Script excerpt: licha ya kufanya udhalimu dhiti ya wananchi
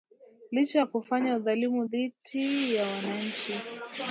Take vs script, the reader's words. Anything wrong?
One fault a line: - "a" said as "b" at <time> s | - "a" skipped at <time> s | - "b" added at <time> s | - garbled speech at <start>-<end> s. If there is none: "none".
none